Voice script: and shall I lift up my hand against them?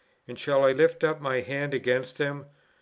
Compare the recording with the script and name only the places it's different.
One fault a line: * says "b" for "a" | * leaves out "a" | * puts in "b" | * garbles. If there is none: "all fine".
all fine